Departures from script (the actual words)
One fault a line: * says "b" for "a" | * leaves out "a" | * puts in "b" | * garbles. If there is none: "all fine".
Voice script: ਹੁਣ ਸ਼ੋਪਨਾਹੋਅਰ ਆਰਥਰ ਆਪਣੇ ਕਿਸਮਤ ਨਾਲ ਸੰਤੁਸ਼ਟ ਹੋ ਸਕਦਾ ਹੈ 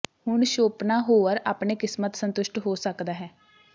* leaves out "ਆਰਥਰ"
* leaves out "ਨਾਲ"